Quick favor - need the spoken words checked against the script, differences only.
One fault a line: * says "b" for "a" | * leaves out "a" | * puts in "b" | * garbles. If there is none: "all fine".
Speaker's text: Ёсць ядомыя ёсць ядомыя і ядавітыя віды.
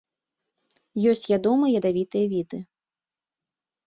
* leaves out "ёсць ядомыя"